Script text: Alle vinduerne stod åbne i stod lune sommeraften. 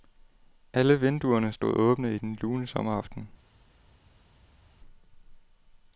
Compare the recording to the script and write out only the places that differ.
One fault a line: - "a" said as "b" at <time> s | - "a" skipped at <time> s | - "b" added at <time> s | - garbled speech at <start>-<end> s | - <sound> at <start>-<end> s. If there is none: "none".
- "stod" said as "den" at 2.2 s